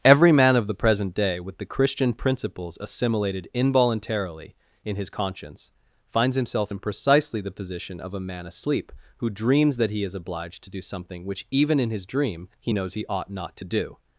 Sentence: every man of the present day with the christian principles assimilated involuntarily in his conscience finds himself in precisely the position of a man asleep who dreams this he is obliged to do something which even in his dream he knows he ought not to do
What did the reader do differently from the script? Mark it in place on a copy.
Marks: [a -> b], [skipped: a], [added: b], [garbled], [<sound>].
every man of the present day with the christian principles assimilated involuntarily in his conscience finds himself in precisely the position of a man asleep who dreams [this -> that] he is obliged to do something which even in his dream he knows he ought not to do